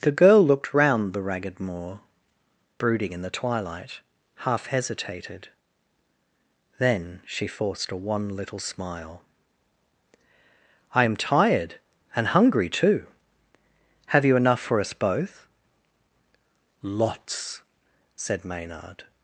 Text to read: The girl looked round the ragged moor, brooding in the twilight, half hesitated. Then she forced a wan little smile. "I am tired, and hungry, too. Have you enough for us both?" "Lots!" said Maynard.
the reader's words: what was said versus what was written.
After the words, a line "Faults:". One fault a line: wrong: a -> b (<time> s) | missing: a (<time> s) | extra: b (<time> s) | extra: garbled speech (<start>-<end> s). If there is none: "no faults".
The girl looked round the ragged moor, brooding in the twilight, half hesitated. Then she forced a wan little smile. "I am tired, and hungry, too. Have you enough for us both?" "Lots!" said Maynard.
Faults:
no faults